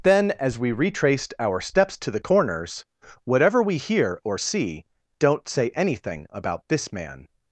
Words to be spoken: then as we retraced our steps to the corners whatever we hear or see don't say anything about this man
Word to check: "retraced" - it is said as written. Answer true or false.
true